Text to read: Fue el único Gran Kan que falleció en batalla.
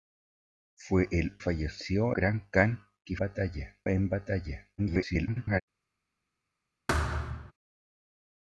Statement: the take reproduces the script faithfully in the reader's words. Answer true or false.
false